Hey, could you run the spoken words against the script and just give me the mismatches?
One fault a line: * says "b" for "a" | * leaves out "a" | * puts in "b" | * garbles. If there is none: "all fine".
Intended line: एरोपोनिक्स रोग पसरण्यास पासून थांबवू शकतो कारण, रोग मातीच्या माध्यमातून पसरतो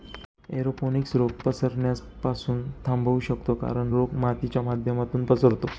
all fine